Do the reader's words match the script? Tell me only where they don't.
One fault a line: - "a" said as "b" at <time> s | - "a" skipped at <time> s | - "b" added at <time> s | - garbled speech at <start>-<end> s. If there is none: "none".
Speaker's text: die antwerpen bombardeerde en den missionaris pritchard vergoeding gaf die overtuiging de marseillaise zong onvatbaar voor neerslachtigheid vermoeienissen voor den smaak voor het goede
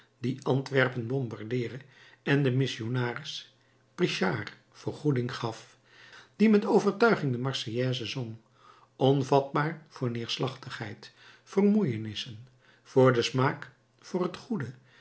- "met" added at 6.5 s